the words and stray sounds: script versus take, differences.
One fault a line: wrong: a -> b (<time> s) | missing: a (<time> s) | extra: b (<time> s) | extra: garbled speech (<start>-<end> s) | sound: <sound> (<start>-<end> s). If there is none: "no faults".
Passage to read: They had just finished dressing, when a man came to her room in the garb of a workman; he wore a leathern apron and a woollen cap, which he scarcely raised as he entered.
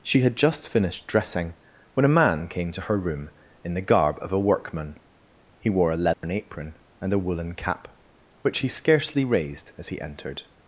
wrong: They -> She (0.0 s)
sound: dropout (6.1-6.2 s)